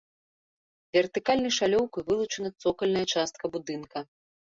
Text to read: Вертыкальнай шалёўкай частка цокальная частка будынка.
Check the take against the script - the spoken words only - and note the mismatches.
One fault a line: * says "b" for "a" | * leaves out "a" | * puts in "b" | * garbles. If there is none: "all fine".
* says "вылучана" for "частка"